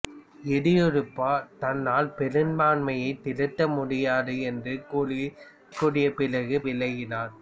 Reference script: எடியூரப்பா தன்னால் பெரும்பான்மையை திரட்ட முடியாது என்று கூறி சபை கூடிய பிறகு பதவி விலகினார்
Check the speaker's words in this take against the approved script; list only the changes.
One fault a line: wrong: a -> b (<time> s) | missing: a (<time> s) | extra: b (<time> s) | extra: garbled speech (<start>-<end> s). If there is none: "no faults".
missing: சபை (5.2 s)
missing: பதவி (6.6 s)